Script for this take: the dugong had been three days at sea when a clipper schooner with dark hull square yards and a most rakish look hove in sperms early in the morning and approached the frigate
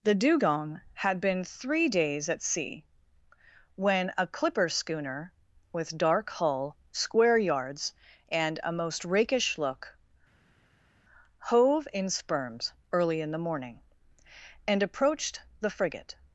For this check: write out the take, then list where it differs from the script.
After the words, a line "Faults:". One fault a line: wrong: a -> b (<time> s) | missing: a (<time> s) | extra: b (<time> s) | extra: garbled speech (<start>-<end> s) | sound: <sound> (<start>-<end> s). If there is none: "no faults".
the dugong had been three days at sea when a clipper schooner with dark hull square yards and a most rakish look hove in sperms early in the morning and approached the frigate
Faults:
no faults